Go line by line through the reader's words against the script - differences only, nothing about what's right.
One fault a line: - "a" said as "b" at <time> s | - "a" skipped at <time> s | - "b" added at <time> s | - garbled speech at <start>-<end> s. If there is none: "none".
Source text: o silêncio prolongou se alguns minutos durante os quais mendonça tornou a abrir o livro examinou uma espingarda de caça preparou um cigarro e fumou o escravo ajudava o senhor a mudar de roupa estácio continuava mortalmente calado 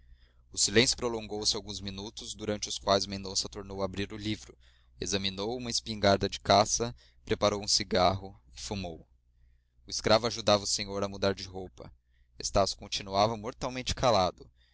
none